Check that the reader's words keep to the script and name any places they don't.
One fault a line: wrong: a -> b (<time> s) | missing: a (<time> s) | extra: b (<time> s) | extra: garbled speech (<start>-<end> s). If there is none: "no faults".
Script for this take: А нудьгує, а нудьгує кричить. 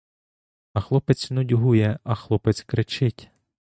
extra: хлопець (0.8 s)
wrong: нудьгує -> хлопець (2.1 s)